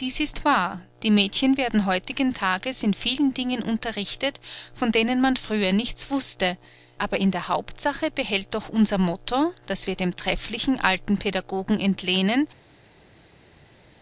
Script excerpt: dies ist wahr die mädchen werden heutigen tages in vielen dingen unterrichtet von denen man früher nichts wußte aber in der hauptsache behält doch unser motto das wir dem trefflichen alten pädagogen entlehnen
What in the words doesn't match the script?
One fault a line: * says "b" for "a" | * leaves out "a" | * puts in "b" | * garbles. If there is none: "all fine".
all fine